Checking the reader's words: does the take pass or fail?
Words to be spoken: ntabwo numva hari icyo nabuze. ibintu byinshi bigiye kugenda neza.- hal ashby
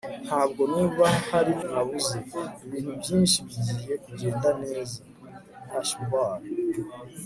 fail